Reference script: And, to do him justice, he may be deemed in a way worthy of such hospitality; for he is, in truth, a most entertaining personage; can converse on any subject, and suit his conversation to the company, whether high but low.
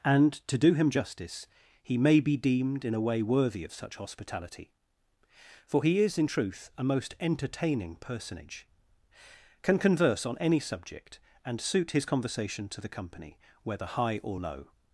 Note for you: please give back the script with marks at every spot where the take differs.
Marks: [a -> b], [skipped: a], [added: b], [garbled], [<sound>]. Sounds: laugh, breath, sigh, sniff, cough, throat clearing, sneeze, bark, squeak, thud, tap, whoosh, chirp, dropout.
And, to do him justice, he may be deemed in a way worthy of such hospitality; for he is, in truth, a most entertaining personage; can converse on any subject, and suit his conversation to the company, whether high [but -> or] low.